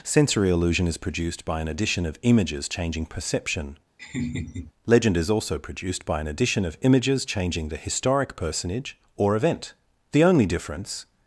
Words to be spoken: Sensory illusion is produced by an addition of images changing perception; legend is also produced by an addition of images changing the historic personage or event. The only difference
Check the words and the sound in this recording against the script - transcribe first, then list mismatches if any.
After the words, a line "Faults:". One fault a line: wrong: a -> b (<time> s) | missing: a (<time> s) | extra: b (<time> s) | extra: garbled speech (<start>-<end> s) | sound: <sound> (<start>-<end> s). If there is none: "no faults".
Sensory illusion is produced by an addition of images changing perception; legend is also produced by an addition of images changing the historic personage or event. The only difference
Faults:
sound: laugh (4.0-4.7 s)